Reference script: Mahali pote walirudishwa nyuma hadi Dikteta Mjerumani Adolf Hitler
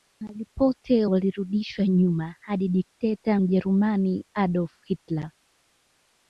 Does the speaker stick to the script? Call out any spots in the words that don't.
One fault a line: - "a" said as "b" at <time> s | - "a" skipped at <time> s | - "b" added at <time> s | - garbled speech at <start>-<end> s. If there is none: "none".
none